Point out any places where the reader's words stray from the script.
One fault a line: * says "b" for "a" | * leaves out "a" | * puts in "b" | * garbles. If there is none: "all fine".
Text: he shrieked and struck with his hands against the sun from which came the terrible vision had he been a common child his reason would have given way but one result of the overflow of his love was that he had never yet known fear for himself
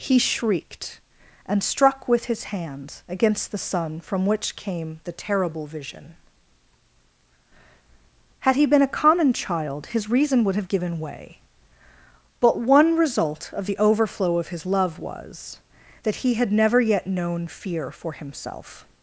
all fine